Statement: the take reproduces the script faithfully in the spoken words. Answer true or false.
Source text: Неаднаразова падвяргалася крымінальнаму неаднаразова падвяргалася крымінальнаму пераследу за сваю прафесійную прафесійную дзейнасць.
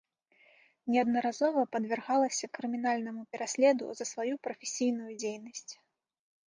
false